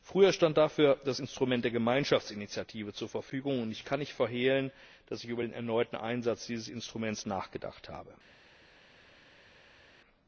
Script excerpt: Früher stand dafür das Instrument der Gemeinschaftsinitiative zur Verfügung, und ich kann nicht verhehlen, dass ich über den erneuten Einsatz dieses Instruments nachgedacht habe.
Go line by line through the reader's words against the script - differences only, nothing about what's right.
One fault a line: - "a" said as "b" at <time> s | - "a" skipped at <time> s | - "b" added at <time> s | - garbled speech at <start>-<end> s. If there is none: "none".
none